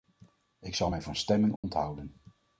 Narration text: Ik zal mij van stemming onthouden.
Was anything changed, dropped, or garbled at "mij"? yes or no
no